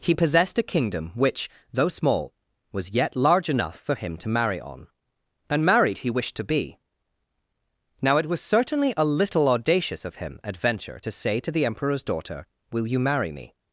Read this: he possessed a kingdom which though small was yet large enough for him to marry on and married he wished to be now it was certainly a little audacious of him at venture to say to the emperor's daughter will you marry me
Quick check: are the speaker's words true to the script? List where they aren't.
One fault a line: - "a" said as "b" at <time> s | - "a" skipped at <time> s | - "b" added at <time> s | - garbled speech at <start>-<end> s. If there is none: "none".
none